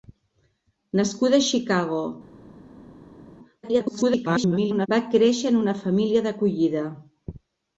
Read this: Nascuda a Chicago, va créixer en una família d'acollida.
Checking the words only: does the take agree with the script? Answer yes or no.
no